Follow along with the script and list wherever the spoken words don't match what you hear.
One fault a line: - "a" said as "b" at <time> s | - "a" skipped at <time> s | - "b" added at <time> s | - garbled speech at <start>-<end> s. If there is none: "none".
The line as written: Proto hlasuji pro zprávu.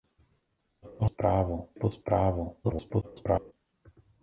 - "hlasuji" said as "zprávu" at 1.0 s
- garbled speech at 2.6-3.5 s